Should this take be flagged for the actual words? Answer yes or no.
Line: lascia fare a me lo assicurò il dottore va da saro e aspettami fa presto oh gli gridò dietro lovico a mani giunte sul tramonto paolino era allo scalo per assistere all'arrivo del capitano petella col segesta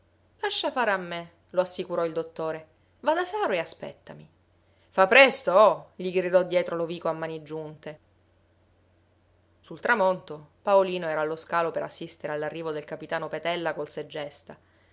no